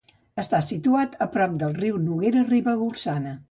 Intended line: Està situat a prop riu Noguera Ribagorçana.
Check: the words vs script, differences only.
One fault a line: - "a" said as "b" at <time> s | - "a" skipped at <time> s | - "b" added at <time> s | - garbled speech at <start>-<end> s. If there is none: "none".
- "del" added at 1.6 s